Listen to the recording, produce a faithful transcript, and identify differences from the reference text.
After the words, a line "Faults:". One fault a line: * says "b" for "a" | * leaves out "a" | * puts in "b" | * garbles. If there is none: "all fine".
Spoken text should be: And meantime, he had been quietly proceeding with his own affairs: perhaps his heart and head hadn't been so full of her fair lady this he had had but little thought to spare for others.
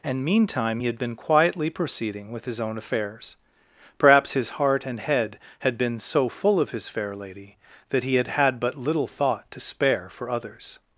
And meantime, he had been quietly proceeding with his own affairs: perhaps his heart and head had been so full of his fair lady that he had had but little thought to spare for others.
Faults:
* says "had" for "hadn't"
* says "his" for "her"
* says "that" for "this"